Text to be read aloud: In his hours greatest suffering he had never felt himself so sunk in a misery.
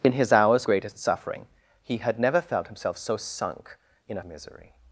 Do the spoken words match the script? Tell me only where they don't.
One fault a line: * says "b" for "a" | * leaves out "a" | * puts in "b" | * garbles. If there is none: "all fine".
all fine